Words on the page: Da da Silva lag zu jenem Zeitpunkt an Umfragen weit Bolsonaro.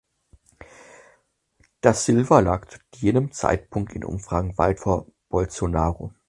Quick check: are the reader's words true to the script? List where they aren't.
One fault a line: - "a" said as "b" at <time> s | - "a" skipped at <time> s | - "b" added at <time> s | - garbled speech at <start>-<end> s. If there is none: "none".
- "da" skipped at 1.9 s
- "an" said as "in" at 3.9 s
- "vor" added at 4.8 s